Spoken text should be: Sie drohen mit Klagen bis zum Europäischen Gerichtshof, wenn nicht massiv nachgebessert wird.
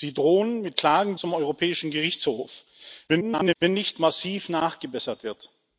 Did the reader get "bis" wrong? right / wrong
wrong